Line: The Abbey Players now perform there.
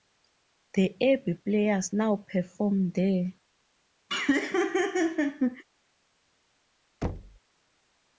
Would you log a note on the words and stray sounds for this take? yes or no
yes